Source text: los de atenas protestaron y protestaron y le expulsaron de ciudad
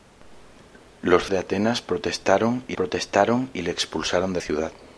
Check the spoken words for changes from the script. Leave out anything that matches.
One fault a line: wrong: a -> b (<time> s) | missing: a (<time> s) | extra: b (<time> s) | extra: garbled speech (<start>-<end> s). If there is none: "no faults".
no faults